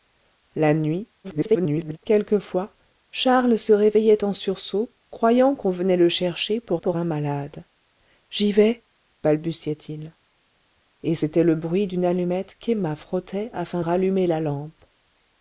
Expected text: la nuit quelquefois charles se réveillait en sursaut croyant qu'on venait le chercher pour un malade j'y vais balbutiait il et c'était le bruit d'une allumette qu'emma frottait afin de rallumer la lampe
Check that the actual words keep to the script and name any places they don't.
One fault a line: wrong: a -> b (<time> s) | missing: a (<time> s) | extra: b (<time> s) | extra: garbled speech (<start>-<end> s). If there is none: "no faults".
extra: garbled speech (1.2-2.0 s)
extra: pour (6.8 s)
missing: de (13.8 s)